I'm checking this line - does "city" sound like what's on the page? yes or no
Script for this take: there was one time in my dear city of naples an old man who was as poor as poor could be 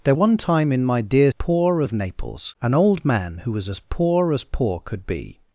no